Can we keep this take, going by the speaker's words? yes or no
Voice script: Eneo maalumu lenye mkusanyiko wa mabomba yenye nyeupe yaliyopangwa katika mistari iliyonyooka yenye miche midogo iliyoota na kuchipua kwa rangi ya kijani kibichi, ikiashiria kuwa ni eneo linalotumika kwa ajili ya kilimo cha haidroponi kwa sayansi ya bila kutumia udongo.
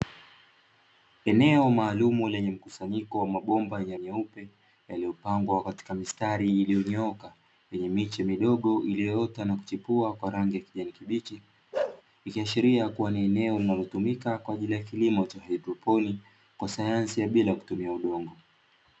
yes